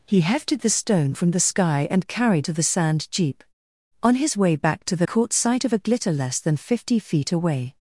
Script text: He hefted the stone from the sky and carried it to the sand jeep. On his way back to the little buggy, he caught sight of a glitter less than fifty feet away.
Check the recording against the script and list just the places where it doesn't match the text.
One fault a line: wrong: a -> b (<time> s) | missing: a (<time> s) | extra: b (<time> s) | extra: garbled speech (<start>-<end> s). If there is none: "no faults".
missing: it (2.5 s)
missing: little buggy he (5.1 s)